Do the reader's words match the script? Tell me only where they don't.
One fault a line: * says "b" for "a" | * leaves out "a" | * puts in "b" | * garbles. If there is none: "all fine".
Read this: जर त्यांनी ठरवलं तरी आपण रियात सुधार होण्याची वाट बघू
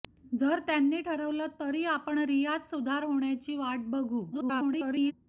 * garbles